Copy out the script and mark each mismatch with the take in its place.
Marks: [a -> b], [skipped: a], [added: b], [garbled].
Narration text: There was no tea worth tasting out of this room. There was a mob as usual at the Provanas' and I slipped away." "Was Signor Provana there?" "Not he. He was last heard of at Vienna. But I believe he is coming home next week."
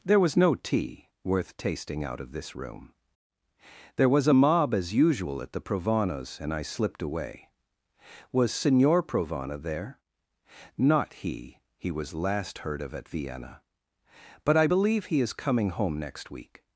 There was no tea worth tasting out of this room. There was a mob as usual at the Provanas' and I slipped away." "Was Signor Provana there?" "Not he. He was last heard of at Vienna. But I believe he is coming home next week."